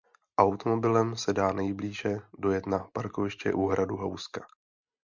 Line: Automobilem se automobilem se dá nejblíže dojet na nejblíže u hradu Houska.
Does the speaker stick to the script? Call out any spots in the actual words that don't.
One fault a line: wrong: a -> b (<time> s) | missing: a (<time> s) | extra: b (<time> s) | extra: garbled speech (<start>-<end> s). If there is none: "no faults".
missing: automobilem se (1.3 s)
wrong: nejblíže -> parkoviště (2.9 s)